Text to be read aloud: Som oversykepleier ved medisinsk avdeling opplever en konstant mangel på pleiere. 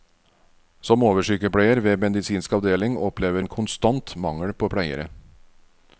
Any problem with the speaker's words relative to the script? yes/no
no